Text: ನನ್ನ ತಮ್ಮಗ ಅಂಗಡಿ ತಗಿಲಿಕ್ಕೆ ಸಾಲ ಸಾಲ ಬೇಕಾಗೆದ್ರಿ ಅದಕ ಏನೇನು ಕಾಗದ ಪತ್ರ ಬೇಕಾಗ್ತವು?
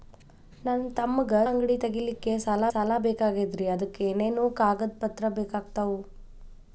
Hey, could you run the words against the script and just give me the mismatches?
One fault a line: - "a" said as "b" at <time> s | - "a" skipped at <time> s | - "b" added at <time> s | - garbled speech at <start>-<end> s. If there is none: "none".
none